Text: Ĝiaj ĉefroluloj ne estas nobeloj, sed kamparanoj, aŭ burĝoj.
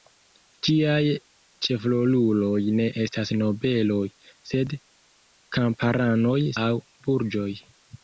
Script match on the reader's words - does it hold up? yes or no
yes